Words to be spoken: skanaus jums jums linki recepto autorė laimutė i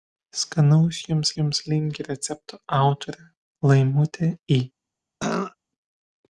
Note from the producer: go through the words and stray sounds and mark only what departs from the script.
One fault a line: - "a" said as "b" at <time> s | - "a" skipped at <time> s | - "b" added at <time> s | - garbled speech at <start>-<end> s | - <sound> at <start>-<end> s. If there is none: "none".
- throat clearing at 5.2-5.6 s